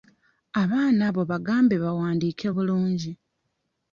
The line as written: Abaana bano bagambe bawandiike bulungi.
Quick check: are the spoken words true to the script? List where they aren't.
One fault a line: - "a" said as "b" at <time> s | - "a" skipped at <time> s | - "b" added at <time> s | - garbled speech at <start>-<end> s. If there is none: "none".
- "bano" said as "abo" at 1.1 s